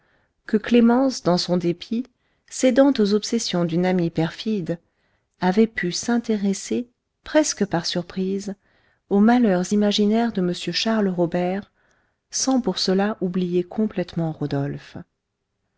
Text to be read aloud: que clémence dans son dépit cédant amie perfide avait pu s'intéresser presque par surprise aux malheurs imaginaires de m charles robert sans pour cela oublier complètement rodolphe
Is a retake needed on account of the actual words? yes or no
yes